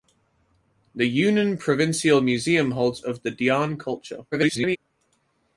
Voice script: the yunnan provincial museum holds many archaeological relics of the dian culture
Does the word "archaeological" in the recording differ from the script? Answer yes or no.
yes